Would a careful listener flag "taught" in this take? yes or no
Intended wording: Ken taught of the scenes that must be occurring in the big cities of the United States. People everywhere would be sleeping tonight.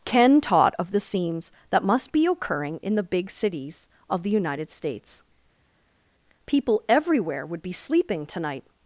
no